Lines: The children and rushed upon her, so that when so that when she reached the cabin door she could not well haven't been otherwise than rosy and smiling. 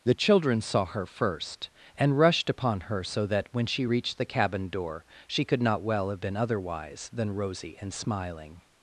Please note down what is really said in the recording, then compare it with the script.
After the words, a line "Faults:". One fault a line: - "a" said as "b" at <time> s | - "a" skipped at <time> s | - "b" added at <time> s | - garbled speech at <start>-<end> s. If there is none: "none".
The children saw her first and rushed upon her, so that when she reached the cabin door she could not well have been otherwise than rosy and smiling.
Faults:
- "saw her first" added at 0.6 s
- "so that when" skipped at 3.7 s
- "haven't" said as "have" at 6.1 s